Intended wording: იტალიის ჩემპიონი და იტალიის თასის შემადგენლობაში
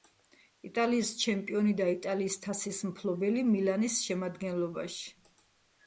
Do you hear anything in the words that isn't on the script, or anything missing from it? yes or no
yes